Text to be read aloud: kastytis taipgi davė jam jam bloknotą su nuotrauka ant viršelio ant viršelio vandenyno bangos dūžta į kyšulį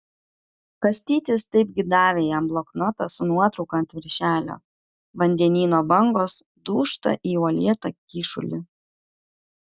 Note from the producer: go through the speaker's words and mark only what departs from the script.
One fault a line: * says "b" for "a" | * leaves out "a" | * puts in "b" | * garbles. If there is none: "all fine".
* leaves out "jam"
* leaves out "ant viršelio"
* puts in "uolėtą"